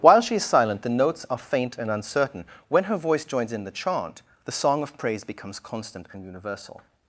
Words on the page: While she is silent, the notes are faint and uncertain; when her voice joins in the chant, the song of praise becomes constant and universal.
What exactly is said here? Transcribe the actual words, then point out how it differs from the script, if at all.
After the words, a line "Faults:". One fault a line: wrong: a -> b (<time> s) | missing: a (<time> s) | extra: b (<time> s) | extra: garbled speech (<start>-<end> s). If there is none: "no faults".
While she is silent, the notes are faint and uncertain; when her voice joins in the chant, the song of praise becomes constant and universal.
Faults:
no faults